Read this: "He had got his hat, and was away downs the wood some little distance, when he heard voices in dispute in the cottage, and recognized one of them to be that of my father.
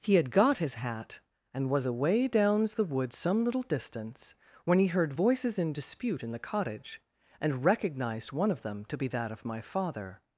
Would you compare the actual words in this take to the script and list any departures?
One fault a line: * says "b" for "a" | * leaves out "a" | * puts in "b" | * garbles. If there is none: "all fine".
all fine